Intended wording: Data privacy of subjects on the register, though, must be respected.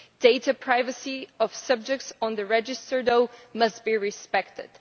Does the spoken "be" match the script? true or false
true